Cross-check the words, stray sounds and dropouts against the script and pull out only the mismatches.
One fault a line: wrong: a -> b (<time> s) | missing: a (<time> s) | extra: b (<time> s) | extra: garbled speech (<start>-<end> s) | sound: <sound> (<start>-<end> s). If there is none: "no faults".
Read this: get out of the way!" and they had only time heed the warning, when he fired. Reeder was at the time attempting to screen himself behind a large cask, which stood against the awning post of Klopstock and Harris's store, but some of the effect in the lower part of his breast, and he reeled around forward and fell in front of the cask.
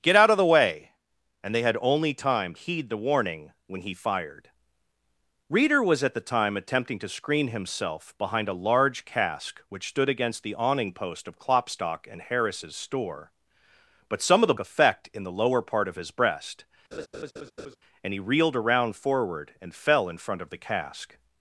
sound: laugh (16.9-17.8 s)